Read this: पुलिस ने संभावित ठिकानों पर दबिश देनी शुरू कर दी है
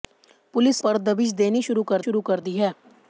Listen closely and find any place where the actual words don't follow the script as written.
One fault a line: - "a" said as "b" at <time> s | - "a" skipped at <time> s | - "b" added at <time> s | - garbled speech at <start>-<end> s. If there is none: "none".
- "ने संभावित ठिकानों" skipped at 0.8 s
- "शुरू कर" added at 2.0 s